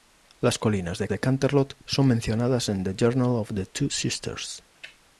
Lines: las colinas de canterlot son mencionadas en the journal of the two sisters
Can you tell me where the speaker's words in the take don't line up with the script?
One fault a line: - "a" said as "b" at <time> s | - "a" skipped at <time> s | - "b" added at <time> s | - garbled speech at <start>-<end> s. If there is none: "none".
- "de" added at 1.1 s